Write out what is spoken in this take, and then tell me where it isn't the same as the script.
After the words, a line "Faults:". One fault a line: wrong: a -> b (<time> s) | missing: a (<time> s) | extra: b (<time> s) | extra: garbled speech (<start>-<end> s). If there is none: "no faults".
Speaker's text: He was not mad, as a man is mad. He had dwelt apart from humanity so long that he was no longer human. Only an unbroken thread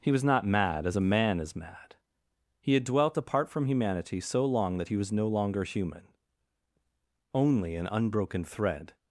He was not mad, as a man is mad. He had dwelt apart from humanity so long that he was no longer human. Only an unbroken thread
Faults:
no faults